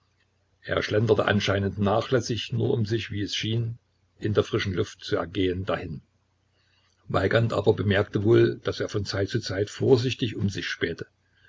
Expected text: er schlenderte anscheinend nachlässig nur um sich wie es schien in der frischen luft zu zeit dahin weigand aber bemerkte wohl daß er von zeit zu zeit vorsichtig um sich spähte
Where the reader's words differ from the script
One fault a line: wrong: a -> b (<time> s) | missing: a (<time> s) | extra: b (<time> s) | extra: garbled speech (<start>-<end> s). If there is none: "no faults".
wrong: zeit -> ergehen (5.2 s)